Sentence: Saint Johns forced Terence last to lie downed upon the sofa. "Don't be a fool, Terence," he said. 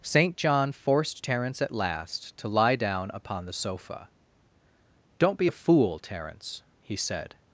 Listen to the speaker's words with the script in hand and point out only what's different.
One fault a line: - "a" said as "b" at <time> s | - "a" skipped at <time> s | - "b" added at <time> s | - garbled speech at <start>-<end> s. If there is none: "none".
- "Johns" said as "John" at 0.3 s
- "at" added at 1.6 s
- "downed" said as "down" at 2.8 s